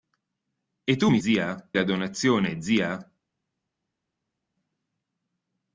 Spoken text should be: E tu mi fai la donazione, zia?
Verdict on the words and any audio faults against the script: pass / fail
fail